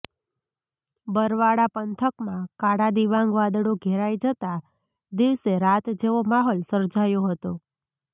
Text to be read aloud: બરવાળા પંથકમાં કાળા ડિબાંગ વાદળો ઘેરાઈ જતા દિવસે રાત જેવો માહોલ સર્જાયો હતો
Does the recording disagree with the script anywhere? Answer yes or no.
no